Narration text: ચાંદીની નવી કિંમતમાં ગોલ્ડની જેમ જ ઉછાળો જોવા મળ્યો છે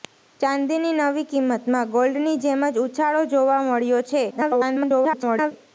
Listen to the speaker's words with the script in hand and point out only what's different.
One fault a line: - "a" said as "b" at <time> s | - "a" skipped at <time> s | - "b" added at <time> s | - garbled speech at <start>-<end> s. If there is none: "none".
- garbled speech at 4.3-5.5 s